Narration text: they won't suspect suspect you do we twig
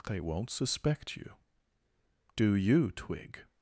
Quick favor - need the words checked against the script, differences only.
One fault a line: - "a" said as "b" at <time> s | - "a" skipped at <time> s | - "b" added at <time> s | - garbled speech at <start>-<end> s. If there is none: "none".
- "suspect" skipped at 1.1 s
- "we" said as "you" at 2.5 s